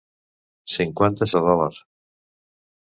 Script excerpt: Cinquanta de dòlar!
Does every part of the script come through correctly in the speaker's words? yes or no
yes